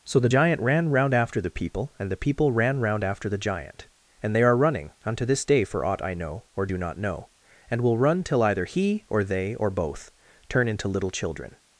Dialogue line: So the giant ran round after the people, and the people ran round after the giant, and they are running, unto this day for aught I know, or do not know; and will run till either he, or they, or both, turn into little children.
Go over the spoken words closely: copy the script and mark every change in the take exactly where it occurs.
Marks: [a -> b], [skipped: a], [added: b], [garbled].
So the giant ran round after the people, and the people ran round after the giant, and they are running, unto this day for aught I know, or do not know; and will run till either he, or they, or both, turn into little children.